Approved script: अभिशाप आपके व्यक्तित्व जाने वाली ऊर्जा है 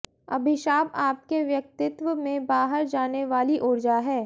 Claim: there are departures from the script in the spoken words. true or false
true